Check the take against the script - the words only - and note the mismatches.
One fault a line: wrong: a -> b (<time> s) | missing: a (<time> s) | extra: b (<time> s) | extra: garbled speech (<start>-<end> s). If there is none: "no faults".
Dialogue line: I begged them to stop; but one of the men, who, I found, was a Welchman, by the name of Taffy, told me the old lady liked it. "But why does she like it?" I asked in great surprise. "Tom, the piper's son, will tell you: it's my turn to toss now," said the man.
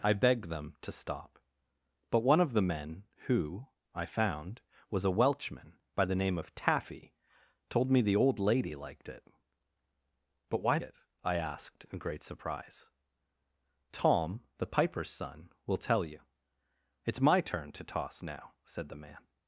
missing: does she like (10.8 s)